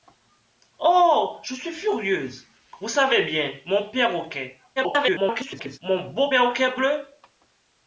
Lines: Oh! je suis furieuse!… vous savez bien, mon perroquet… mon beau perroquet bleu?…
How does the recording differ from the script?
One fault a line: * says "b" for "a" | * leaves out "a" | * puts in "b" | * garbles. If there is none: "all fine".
* garbles